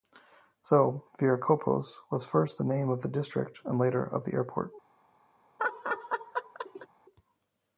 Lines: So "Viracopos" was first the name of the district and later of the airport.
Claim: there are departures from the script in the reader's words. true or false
false